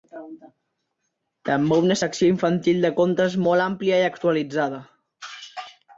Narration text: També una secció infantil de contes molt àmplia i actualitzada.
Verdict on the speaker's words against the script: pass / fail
pass